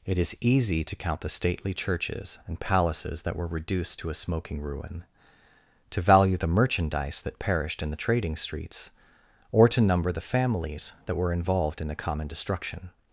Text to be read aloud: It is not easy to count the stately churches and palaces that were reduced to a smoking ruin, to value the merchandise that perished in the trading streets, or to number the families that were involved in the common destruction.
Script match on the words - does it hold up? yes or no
no